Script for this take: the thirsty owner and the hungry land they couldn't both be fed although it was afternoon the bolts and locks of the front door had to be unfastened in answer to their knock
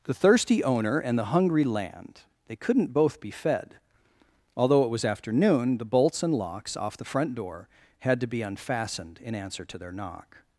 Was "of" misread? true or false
true